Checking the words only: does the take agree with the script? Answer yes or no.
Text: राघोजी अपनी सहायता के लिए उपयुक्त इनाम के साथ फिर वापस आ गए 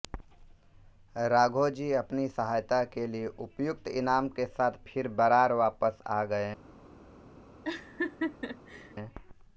no